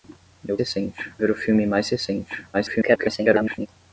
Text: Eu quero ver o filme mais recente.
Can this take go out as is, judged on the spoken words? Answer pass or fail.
fail